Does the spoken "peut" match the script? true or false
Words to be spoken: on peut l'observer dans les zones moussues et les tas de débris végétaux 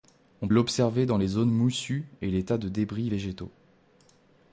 false